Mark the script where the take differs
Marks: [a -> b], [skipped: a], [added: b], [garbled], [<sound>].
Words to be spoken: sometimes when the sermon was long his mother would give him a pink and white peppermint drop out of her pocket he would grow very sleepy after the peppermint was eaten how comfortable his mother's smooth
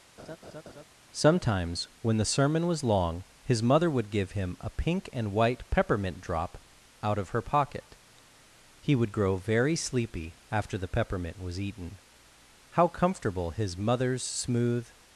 [laugh] sometimes when the sermon was long his mother would give him a pink and white peppermint drop out of her pocket he would grow very sleepy after the peppermint was eaten how comfortable his mother's smooth